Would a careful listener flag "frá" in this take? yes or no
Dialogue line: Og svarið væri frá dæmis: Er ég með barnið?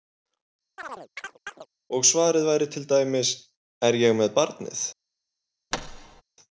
yes